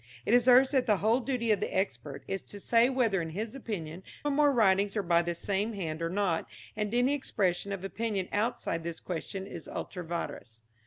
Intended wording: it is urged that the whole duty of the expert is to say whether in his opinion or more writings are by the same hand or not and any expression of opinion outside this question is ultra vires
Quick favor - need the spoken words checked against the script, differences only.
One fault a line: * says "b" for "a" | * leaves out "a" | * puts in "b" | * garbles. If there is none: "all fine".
all fine